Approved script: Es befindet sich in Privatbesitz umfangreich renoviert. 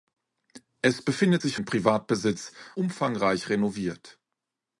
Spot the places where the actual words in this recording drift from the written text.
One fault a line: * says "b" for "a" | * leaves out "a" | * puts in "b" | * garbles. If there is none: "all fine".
all fine